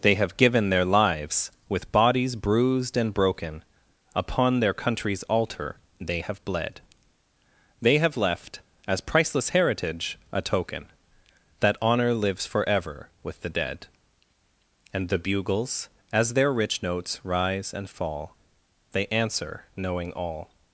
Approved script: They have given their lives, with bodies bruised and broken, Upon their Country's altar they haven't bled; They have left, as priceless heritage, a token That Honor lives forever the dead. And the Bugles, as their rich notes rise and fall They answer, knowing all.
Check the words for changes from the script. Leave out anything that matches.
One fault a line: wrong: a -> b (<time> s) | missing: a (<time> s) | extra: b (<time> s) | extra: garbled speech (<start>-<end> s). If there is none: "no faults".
wrong: haven't -> have (6.2 s)
extra: with (13.2 s)